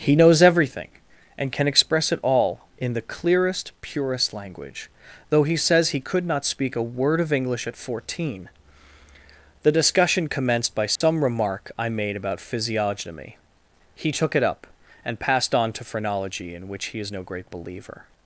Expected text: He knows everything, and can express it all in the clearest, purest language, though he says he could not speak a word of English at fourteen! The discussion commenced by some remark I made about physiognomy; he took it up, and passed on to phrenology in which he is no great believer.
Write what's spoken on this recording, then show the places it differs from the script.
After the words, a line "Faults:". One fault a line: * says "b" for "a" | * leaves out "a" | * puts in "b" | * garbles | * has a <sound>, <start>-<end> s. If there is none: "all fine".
He knows everything, and can express it all in the clearest, purest language, though he says he could not speak a word of English at fourteen! The discussion commenced by some remark I made about physiognomy; he took it up, and passed on to phrenology in which he is no great believer.
Faults:
* has a dropout, 11.0-11.0 s